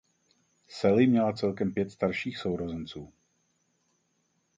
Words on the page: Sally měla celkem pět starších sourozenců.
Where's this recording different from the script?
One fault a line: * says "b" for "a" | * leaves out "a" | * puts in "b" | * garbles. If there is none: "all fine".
all fine